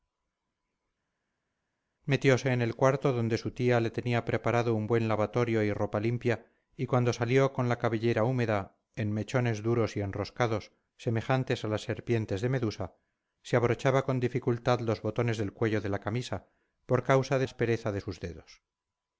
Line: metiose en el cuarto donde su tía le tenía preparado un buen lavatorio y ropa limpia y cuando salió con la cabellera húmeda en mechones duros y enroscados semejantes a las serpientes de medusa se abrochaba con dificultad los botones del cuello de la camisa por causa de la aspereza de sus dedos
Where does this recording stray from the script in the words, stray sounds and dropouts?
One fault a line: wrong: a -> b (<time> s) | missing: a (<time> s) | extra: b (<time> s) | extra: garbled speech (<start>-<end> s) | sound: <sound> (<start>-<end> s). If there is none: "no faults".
missing: la (17.5 s)